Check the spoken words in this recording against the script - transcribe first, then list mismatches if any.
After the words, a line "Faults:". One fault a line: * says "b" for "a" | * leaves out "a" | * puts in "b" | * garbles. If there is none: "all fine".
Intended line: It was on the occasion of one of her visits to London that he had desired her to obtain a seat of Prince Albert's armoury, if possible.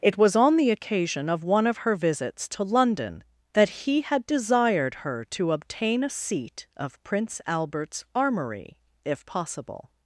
It was on the occasion of one of her visits to London that he had desired her to obtain a seat of Prince Albert's armoury, if possible.
Faults:
all fine